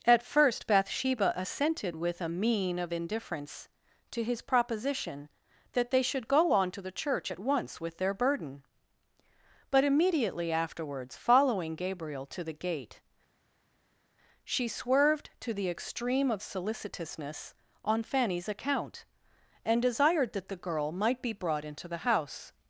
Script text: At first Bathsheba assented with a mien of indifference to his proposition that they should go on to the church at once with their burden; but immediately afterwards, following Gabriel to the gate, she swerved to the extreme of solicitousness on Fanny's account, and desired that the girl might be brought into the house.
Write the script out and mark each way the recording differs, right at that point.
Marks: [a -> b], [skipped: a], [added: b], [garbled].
At first Bathsheba assented with a mien of indifference to his proposition that they should go on to the church at once with their burden; but immediately afterwards, following Gabriel to the gate, she swerved to the extreme of solicitousness on Fanny's account, and desired that the girl might be brought into the house.